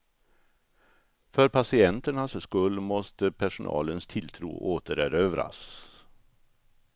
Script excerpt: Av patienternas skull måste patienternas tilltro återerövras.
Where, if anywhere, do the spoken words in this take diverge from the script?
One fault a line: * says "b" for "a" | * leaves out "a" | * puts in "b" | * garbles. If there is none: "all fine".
* says "För" for "Av"
* says "personalens" for "patienternas"